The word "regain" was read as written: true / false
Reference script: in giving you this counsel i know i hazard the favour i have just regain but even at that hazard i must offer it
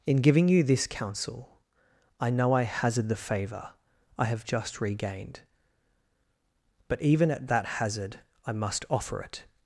false